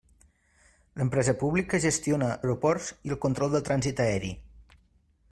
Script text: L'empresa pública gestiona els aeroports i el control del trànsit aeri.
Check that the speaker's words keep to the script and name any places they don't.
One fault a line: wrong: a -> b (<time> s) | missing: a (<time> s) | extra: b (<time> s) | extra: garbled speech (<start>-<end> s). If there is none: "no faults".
missing: els (2.3 s)